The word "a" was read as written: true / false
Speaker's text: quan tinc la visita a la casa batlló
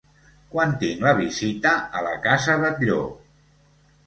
true